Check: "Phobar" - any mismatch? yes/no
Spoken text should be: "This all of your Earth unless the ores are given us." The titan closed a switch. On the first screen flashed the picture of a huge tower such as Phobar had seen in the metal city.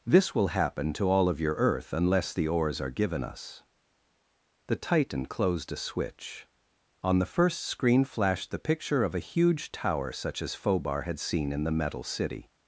no